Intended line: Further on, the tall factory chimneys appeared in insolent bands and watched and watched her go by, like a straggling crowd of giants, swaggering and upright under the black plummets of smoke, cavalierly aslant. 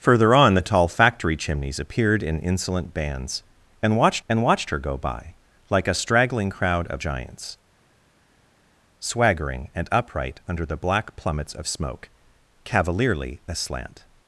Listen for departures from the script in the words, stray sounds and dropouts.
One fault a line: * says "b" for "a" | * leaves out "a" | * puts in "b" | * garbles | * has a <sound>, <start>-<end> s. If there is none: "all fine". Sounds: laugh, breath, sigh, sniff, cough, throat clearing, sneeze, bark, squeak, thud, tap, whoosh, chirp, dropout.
all fine